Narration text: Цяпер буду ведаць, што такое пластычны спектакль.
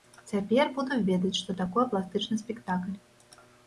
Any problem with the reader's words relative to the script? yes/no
no